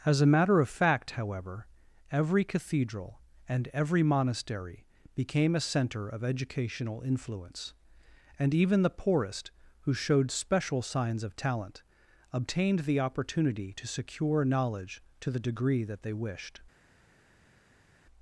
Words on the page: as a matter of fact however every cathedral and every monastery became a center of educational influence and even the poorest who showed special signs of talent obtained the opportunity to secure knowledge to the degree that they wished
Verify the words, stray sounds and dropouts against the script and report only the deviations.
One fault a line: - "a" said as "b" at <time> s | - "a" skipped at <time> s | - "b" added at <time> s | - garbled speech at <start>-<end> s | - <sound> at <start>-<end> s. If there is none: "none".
none